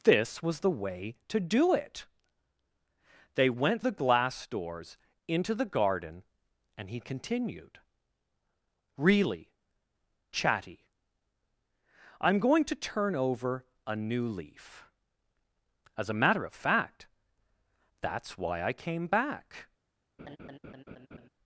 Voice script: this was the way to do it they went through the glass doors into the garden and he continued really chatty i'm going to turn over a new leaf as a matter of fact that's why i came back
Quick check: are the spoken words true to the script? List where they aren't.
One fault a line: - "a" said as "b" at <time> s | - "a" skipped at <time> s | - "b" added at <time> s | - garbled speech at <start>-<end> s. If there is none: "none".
- "through" skipped at 3.8 s